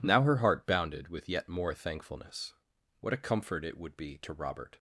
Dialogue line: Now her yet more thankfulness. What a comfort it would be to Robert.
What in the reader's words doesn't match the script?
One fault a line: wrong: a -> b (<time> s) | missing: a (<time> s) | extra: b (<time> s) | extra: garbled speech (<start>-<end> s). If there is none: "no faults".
extra: heart bounded with (0.4 s)